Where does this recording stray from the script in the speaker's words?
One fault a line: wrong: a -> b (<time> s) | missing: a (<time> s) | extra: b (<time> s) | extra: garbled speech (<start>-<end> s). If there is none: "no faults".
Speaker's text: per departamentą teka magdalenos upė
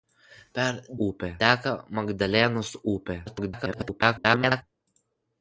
wrong: departamentą -> upė (1.1 s)
extra: garbled speech (3.3-4.6 s)